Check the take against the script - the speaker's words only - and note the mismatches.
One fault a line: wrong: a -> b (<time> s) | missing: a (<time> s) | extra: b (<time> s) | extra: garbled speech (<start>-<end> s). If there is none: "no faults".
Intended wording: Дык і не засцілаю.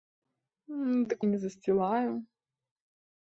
no faults